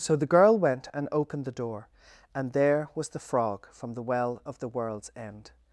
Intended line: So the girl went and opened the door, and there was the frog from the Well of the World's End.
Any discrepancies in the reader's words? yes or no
no